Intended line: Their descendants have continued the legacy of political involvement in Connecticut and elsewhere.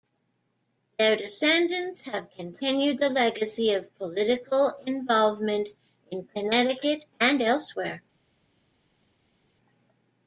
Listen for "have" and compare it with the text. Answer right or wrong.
right